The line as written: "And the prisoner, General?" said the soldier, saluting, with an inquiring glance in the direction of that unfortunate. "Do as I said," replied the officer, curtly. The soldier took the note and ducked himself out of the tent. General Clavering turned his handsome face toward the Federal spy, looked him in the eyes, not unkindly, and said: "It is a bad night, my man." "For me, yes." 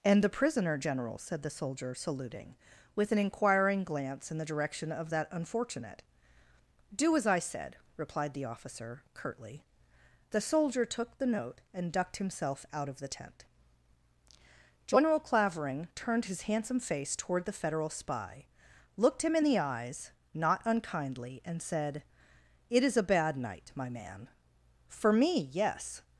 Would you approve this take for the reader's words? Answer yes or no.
yes